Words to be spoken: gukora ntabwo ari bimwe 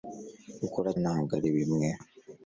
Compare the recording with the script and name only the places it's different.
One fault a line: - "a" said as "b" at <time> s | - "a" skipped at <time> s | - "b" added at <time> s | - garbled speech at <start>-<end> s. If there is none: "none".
none